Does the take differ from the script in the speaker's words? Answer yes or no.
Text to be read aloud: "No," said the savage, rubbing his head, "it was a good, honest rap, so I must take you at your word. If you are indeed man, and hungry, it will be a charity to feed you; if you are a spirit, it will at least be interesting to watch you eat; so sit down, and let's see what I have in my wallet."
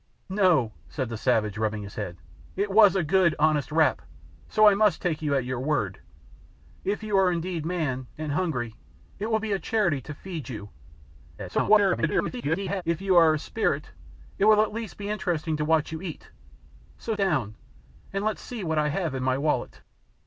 yes